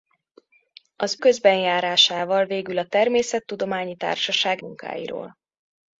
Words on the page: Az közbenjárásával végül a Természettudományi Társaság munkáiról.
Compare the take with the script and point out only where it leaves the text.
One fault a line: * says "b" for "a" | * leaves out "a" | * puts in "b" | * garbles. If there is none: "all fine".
all fine